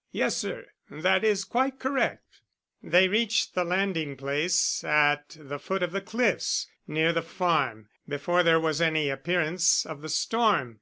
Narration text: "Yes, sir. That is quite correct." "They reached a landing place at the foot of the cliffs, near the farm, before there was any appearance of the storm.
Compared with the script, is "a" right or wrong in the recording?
wrong